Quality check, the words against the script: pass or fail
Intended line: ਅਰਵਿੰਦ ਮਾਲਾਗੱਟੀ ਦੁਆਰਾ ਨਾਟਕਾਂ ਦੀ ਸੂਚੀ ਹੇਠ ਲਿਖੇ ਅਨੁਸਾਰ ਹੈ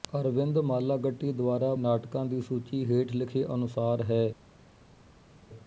pass